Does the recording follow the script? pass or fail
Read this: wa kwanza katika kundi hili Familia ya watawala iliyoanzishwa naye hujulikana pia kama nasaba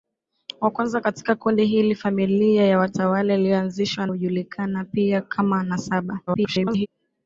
fail